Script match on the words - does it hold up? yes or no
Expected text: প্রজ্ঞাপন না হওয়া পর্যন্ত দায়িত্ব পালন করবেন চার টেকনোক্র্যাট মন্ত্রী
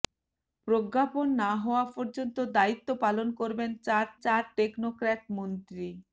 no